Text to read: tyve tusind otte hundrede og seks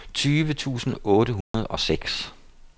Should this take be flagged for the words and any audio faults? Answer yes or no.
yes